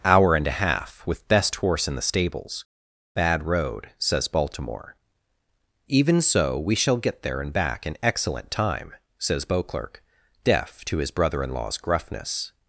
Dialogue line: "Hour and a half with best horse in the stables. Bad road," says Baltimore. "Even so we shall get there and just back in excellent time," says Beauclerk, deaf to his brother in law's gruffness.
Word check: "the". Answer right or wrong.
right